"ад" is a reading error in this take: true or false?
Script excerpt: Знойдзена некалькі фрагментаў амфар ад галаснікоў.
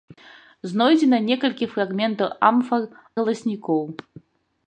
true